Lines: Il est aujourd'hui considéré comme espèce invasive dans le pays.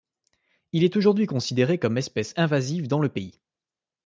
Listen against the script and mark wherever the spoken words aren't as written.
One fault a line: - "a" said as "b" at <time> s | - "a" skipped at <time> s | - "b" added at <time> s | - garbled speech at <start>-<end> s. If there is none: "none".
none